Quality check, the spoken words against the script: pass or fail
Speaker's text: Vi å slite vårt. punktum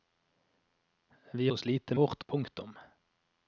pass